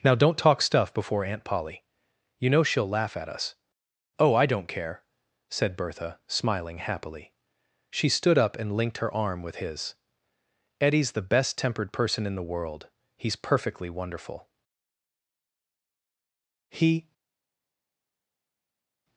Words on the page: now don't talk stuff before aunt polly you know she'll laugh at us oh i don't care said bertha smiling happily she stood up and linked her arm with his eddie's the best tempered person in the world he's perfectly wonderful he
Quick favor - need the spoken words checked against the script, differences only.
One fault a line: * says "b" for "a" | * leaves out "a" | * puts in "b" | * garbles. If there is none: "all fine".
all fine